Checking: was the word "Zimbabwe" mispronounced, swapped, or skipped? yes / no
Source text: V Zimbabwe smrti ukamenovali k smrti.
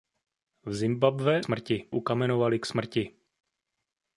no